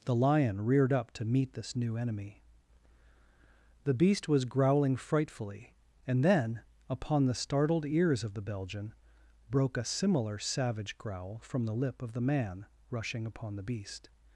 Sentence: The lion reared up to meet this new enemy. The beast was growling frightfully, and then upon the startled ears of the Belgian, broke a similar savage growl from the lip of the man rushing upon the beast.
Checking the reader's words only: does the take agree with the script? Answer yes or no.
yes